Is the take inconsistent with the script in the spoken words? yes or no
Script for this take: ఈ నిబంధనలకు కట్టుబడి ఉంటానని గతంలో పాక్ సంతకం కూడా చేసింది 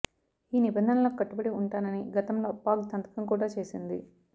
no